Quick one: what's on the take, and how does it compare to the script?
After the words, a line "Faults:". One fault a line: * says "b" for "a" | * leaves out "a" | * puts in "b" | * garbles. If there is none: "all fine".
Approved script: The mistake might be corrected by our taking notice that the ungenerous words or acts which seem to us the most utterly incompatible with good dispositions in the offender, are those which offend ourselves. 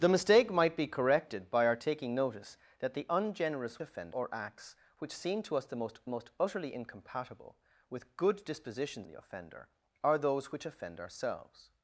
The mistake might be corrected by our taking notice that the ungenerous offend or acts which seem to us the most most utterly incompatible with good dispositions the offender, are those which offend ourselves.
Faults:
* says "offend" for "words"
* puts in "most"
* leaves out "in"